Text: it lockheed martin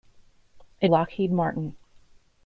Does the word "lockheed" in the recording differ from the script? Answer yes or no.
no